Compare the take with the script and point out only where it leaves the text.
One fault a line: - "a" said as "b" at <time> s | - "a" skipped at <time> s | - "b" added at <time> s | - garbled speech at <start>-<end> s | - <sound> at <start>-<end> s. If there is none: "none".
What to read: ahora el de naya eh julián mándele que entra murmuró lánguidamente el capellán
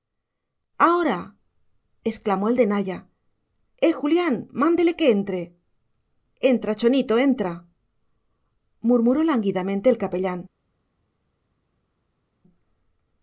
- "exclamó" added at 2.0 s
- "entre entra chonito" added at 5.1 s